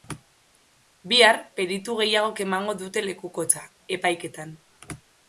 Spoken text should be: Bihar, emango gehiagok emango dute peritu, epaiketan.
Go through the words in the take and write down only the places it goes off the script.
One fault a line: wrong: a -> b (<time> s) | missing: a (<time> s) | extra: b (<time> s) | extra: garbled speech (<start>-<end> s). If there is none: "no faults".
wrong: emango -> peritu (1.6 s)
wrong: peritu -> lekukotza (3.1 s)